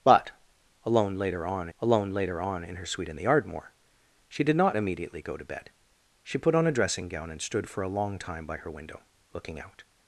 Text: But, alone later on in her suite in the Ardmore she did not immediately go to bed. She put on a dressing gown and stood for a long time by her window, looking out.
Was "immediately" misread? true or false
false